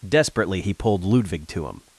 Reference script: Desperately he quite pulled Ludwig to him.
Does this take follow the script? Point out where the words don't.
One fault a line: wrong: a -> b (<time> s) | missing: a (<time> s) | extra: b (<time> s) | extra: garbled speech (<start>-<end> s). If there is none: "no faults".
missing: quite (0.7 s)